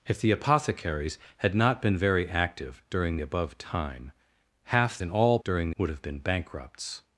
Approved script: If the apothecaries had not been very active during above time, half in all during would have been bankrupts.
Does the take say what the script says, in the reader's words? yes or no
yes